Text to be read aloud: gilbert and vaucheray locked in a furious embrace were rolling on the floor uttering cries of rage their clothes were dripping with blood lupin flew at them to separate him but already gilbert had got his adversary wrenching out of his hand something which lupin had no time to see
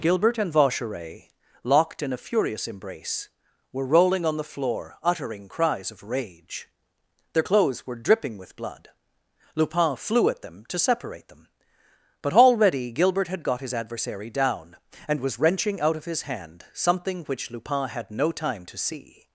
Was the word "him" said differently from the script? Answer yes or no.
yes